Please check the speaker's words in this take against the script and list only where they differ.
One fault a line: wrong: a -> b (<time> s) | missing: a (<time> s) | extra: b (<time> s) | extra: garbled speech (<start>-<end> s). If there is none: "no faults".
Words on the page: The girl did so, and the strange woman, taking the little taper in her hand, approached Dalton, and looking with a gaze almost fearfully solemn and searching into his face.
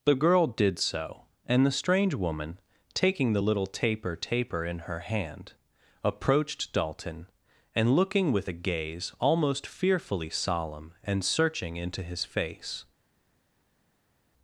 extra: taper (4.1 s)